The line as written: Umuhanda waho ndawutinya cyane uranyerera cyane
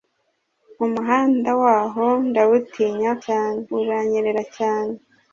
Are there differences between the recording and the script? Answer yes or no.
no